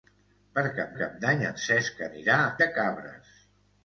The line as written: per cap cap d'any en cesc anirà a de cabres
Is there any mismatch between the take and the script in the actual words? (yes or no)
no